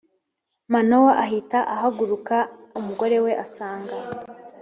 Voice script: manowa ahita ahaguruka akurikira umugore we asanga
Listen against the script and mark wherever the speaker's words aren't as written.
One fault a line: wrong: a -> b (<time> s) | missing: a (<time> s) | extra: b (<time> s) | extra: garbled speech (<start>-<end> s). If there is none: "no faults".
missing: akurikira (2.4 s)